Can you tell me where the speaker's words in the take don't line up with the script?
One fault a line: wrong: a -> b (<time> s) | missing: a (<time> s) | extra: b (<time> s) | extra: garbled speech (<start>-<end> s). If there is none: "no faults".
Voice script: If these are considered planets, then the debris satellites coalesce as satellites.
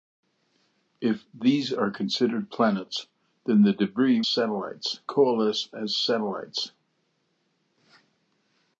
no faults